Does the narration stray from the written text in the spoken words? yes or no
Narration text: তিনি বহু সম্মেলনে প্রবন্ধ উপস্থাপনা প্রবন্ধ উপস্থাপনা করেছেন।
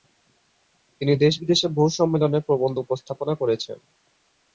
yes